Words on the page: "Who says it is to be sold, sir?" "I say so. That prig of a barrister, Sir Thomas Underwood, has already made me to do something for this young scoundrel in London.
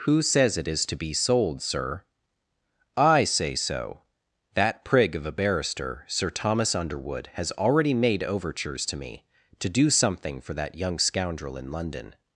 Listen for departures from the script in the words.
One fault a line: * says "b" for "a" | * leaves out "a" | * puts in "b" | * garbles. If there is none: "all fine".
* puts in "overtures to"
* says "that" for "this"